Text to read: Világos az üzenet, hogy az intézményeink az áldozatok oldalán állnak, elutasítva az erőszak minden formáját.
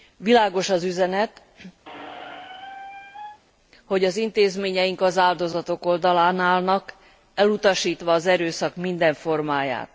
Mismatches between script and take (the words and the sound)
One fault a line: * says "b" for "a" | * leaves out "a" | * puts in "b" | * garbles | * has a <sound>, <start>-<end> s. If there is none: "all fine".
* has a squeak, 1.9-3.4 s